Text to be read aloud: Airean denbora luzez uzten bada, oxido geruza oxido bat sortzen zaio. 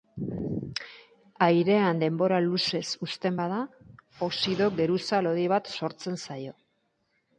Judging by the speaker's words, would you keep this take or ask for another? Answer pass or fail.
fail